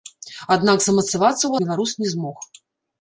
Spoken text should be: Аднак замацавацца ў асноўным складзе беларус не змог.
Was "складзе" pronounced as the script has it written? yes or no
no